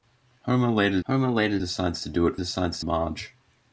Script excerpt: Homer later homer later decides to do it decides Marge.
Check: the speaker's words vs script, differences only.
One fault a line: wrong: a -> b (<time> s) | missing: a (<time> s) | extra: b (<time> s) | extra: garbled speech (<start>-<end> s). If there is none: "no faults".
no faults